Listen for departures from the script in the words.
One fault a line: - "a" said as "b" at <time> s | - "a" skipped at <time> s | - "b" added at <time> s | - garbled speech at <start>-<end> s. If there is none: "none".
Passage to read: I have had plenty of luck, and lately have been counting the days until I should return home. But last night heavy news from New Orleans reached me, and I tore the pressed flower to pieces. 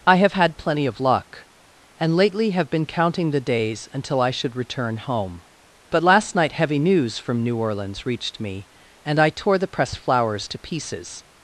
- "flower" said as "flowers" at 10.0 s